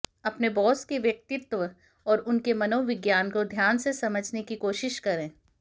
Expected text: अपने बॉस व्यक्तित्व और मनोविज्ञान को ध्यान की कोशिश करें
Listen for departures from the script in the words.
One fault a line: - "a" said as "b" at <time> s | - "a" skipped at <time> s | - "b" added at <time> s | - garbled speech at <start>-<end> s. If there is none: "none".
- "के" added at 0.8 s
- "उनके" added at 2.2 s
- "से समझने" added at 3.8 s